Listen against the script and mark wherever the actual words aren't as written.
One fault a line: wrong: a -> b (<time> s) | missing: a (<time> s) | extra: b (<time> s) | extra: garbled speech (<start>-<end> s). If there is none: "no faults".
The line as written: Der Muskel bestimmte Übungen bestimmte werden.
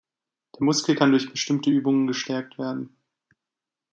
extra: kann durch (0.9 s)
wrong: bestimmte -> gestärkt (2.1 s)